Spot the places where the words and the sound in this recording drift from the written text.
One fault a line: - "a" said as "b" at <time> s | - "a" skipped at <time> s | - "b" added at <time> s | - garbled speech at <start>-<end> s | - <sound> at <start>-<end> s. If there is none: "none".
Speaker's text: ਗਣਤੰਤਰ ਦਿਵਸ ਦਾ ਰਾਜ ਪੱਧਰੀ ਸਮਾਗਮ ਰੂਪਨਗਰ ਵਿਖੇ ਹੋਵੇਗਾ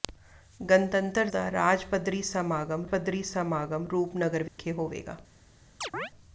- "ਦਿਵਸ" skipped at 1.3 s
- "ਪੱਧਰੀ ਸਮਾਗਮ" added at 2.9 s
- dropout at 4.5-4.6 s
- chirp at 5.8-6.1 s